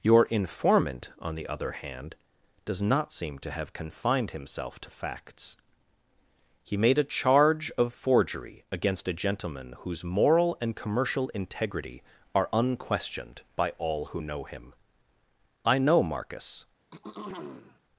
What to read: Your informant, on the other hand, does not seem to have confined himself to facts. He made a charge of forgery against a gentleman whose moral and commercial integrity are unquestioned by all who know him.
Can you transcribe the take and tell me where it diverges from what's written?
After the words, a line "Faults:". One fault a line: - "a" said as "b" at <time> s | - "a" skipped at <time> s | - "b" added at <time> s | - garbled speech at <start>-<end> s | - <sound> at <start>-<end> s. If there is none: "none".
Your informant, on the other hand, does not seem to have confined himself to facts. He made a charge of forgery against a gentleman whose moral and commercial integrity are unquestioned by all who know him. I know Marcus
Faults:
- "I know Marcus" added at 15.7 s
- throat clearing at 16.9-17.8 s